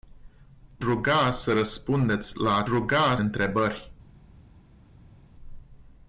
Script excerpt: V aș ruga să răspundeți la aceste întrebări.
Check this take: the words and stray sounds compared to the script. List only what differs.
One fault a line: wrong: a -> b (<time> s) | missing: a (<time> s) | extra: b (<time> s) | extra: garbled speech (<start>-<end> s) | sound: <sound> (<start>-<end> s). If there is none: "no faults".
missing: aș (0.8 s)
wrong: aceste -> ruga (2.7 s)